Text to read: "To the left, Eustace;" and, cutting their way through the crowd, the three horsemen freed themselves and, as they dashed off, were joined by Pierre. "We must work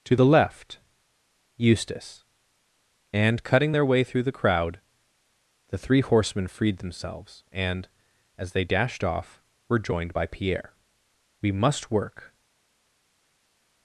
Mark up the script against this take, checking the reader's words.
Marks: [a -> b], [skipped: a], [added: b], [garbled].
"To the left, Eustace;" and, cutting their way through the crowd, the three horsemen freed themselves and, as they dashed off, were joined by Pierre. "We must work